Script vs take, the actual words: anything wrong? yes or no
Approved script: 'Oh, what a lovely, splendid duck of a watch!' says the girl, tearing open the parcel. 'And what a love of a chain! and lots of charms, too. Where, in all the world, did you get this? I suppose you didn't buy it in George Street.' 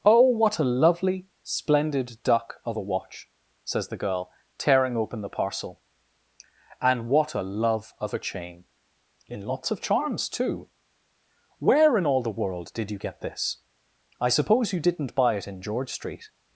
yes